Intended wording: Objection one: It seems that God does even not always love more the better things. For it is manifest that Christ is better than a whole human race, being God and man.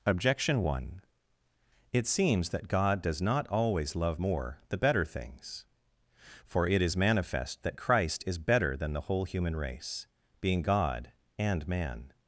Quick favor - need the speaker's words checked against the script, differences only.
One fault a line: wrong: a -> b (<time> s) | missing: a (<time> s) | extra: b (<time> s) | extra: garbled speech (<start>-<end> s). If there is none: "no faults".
missing: even (3.2 s)
wrong: a -> the (8.9 s)